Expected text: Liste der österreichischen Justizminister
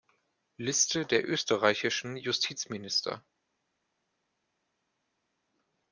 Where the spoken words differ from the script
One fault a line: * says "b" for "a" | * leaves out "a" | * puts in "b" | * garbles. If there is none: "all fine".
all fine